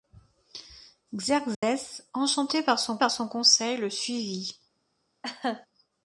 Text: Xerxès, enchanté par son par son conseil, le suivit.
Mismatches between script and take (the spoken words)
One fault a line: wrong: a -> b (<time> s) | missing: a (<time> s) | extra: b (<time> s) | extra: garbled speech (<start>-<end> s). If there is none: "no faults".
no faults